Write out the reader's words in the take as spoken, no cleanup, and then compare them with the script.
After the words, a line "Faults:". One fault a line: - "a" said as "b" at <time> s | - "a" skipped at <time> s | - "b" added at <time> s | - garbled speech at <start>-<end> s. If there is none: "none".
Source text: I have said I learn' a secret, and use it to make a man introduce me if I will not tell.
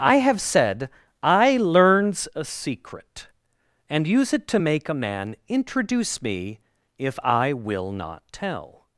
I have said I learns' a secret, and use it to make a man introduce me if I will not tell.
Faults:
- "learn" said as "learns" at 1.6 s